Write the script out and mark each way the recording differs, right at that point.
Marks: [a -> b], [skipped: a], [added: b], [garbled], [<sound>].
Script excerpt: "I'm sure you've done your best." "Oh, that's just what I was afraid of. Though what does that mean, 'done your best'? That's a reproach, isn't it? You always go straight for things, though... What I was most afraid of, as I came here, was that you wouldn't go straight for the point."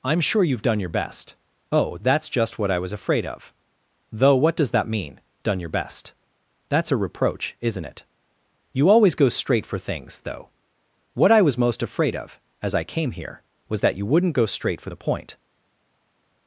"I'm sure you've done your best." "Oh, that's just what I was afraid of. Though what does that mean, 'done your best'? That's a reproach, isn't it? You always go straight for things, though... What I was most afraid of, as I came here, was that you wouldn't go straight for the point."